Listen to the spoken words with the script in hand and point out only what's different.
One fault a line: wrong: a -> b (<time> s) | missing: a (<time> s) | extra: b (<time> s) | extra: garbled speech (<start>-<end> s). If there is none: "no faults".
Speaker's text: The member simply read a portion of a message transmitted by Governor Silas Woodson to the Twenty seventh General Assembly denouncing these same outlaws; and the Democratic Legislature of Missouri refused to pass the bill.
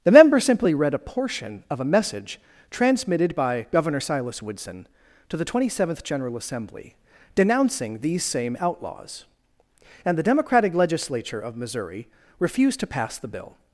no faults